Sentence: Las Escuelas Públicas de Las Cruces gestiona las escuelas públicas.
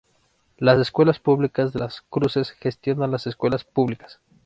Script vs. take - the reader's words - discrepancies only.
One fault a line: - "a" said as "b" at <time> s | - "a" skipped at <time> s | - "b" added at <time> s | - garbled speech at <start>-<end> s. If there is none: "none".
none